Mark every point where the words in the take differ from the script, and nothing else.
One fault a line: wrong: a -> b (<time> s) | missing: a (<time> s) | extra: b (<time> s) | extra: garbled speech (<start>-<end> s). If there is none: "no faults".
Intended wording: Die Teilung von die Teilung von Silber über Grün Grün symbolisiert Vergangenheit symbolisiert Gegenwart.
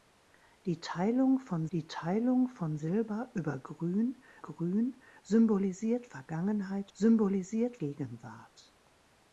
no faults